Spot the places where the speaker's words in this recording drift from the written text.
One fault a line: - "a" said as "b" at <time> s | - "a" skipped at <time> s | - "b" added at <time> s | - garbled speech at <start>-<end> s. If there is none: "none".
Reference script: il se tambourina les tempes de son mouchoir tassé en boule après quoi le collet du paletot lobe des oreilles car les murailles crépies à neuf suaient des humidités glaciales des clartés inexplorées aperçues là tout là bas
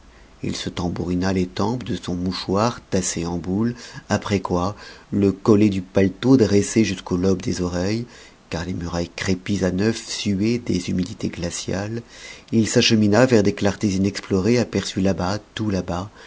- "dressé jusqu'au" added at 6.4 s
- "il s'achemina vers" added at 12.5 s
- "bas" added at 15.1 s